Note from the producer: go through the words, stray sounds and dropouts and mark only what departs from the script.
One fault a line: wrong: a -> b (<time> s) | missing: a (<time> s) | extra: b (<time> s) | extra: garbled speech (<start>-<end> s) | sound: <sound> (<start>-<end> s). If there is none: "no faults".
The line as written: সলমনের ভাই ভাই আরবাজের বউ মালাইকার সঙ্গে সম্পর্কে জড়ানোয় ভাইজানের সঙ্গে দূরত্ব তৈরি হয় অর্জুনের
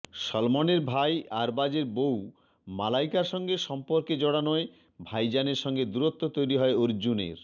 missing: ভাই (1.1 s)